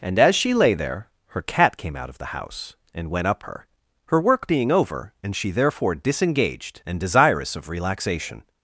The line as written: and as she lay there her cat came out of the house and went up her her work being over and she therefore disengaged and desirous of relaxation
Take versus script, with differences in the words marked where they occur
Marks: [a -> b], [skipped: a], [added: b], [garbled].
and as she lay there her cat came out of the house and went up her her work being over and she therefore disengaged and desirous of relaxation